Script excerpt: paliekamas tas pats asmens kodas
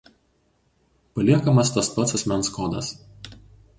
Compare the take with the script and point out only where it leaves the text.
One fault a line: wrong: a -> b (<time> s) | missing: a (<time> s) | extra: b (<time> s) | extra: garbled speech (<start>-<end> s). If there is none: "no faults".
no faults